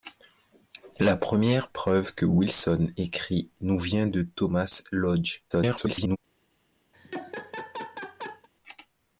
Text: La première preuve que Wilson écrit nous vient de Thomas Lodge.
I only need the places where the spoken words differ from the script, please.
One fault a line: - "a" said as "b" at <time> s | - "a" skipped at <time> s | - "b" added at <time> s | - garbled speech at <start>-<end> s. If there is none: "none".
- garbled speech at 5.5-6.2 s